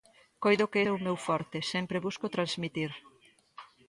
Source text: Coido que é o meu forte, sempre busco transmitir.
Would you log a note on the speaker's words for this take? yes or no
no